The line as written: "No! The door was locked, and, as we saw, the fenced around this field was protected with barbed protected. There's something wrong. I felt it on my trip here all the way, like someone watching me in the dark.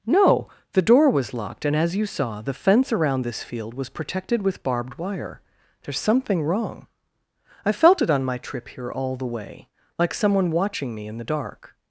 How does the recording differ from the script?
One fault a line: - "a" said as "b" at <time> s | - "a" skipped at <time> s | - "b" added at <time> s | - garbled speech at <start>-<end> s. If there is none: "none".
- "we" said as "you" at 1.9 s
- "fenced" said as "fence" at 2.5 s
- "protected" said as "wire" at 5.0 s